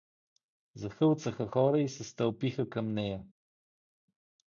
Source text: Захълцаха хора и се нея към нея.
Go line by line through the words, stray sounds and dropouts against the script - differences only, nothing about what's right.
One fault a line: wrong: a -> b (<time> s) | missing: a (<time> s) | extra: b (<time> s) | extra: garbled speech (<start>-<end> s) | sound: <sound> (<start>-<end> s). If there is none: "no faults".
wrong: нея -> стълпиха (2.0 s)